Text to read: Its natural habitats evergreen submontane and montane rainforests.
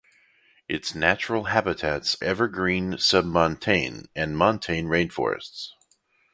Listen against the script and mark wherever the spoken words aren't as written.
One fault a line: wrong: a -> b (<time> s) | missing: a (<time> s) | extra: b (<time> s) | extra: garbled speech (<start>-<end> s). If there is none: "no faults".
no faults